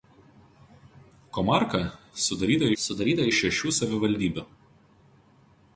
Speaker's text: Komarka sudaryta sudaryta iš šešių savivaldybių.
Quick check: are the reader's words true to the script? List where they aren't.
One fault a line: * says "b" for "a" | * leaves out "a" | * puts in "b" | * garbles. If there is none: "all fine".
all fine